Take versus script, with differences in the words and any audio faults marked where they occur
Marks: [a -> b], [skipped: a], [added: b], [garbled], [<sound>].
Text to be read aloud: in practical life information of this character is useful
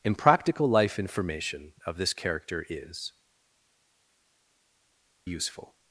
in practical life information of this character is useful